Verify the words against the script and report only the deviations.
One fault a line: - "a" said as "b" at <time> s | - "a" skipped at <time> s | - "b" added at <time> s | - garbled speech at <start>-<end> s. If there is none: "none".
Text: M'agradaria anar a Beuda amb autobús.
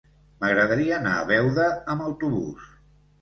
none